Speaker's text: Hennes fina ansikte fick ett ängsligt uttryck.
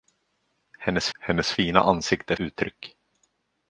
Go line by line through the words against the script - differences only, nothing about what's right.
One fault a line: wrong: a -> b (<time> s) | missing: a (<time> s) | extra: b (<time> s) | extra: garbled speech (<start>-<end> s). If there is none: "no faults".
extra: hennes (1.2 s)
missing: fick ett ängsligt (2.3 s)